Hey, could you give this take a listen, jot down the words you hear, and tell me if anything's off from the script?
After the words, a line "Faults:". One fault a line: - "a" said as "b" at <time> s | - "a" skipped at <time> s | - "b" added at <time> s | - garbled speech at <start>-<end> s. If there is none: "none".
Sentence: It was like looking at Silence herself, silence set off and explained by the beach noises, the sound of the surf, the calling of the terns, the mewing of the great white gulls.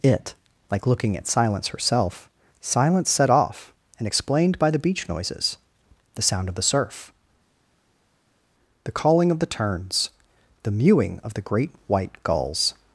It like looking at Silence herself, silence set off and explained by the beach noises, the sound of the surf, the calling of the terns, the mewing of the great white gulls.
Faults:
- "was" skipped at 0.3 s